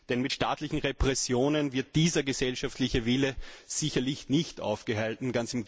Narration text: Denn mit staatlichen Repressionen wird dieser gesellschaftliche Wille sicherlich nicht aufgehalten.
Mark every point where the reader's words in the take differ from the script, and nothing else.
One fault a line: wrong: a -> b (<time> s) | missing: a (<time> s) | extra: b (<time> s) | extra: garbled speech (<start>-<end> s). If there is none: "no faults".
no faults